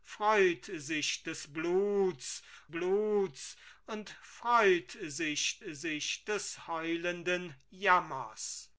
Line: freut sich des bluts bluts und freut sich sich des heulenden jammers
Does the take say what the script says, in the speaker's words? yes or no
yes